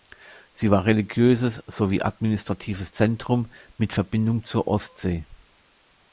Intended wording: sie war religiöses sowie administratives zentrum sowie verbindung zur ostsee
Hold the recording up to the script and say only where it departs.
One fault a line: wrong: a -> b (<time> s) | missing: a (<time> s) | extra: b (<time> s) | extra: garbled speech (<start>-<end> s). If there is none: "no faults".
wrong: sowie -> mit (3.8 s)